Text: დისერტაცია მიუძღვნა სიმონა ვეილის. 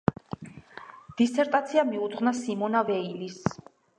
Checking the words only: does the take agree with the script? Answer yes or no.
yes